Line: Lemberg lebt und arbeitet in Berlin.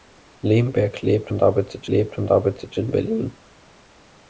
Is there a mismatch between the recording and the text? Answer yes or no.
yes